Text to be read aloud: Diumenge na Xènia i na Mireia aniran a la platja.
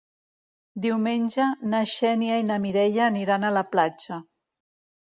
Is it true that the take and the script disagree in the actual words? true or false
false